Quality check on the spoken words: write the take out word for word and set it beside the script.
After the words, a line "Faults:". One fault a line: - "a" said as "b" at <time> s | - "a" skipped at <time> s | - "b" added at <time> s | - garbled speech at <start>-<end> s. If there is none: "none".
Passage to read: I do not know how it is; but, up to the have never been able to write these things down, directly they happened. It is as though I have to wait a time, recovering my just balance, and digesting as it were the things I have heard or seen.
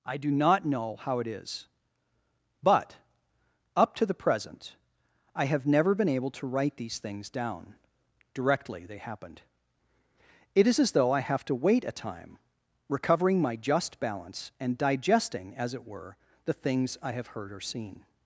I do not know how it is; but, up to the present, I have never been able to write these things down, directly they happened. It is as though I have to wait a time, recovering my just balance, and digesting as it were the things I have heard or seen.
Faults:
- "present I" added at 4.2 s